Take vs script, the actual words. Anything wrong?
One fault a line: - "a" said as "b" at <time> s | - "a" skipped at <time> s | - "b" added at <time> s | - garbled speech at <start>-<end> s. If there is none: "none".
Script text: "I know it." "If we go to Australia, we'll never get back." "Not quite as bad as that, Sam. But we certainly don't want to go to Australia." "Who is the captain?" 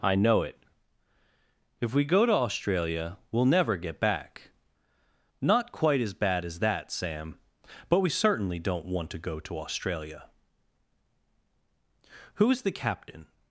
none